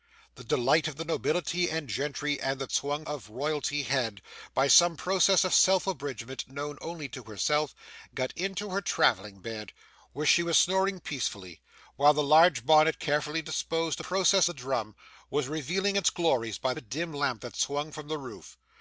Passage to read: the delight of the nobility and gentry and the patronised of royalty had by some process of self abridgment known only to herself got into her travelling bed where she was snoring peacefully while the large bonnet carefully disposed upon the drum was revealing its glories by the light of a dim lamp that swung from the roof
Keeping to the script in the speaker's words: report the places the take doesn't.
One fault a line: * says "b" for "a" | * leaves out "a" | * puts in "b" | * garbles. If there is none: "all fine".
* says "swung" for "patronised"
* says "process" for "upon"
* leaves out "the light of"